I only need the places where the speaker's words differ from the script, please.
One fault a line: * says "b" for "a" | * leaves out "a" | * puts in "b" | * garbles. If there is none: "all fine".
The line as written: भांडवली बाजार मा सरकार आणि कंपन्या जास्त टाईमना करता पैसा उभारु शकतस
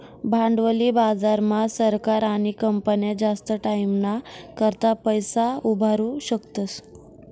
all fine